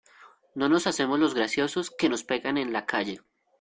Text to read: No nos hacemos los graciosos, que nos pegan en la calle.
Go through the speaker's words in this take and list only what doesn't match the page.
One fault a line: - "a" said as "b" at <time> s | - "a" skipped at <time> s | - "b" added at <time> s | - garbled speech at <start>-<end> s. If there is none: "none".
none